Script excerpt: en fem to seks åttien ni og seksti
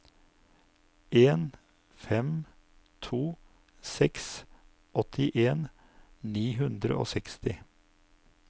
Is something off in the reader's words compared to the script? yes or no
yes